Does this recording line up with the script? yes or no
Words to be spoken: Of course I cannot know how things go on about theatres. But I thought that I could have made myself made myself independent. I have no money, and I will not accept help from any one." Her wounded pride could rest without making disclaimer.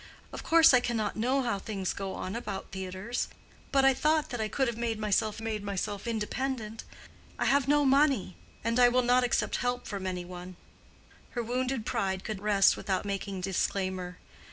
yes